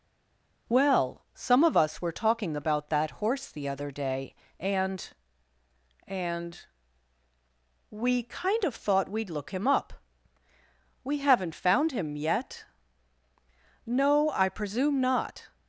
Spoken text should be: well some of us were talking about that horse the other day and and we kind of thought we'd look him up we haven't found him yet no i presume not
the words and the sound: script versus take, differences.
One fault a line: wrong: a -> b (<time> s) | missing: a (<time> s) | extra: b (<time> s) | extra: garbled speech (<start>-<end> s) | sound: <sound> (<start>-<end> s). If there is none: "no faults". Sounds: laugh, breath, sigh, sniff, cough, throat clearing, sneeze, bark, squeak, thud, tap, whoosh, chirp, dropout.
no faults